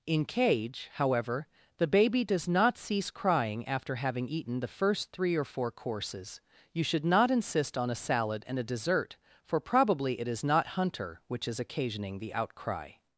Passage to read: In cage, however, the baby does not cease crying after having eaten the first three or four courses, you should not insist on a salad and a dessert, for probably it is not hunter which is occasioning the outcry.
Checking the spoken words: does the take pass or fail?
pass